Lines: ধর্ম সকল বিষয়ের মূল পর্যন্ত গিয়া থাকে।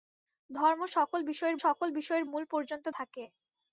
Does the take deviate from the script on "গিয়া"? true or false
true